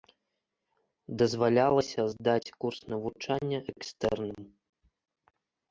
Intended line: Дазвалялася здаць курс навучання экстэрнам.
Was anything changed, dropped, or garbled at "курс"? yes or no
no